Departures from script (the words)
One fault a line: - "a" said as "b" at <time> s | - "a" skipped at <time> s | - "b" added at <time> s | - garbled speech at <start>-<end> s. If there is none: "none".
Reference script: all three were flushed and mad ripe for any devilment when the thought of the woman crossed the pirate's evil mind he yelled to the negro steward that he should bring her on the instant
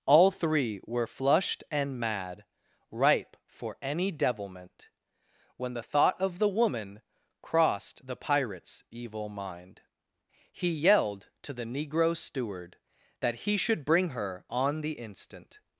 none